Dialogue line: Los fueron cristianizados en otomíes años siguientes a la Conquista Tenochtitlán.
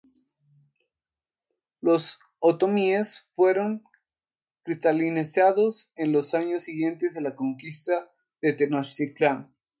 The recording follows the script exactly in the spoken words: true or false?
false